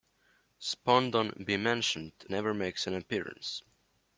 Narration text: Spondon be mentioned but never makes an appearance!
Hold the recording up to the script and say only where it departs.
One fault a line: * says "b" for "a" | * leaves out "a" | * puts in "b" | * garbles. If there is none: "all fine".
* leaves out "but"